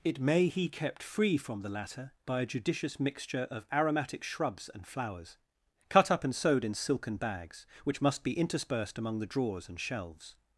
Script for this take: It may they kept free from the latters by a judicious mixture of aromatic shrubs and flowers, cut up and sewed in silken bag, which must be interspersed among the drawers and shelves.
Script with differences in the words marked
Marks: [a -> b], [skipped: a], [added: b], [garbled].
It may [they -> he] kept free from the [latters -> latter] by a judicious mixture of aromatic shrubs and flowers, cut up and sewed in silken [bag, -> bags] which must be interspersed among the drawers and shelves.